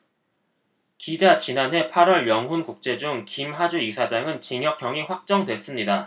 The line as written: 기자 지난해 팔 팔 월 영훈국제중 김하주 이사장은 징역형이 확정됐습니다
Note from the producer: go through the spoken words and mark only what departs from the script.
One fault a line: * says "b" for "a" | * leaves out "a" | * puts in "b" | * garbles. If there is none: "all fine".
* leaves out "팔"